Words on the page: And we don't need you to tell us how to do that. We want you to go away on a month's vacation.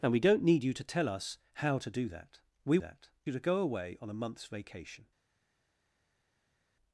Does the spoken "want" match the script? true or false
false